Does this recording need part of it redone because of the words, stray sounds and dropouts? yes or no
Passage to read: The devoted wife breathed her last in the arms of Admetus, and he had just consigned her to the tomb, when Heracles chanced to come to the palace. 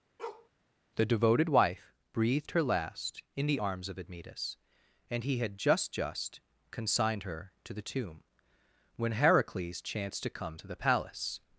yes